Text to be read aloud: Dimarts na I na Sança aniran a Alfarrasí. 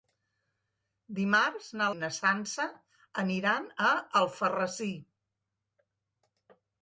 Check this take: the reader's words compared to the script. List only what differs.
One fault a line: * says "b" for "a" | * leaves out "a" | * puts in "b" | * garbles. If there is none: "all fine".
all fine